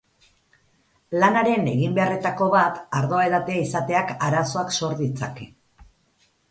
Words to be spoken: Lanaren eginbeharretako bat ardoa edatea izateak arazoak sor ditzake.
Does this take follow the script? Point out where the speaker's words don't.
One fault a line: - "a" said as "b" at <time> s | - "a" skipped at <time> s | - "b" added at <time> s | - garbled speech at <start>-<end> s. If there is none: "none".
none